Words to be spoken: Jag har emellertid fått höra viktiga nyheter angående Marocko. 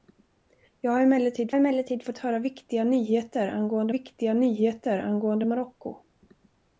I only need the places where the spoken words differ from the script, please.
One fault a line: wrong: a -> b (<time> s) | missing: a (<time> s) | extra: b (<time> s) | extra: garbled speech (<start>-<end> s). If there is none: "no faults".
extra: emellertid (1.5 s)
extra: viktiga nyheter angående (3.9 s)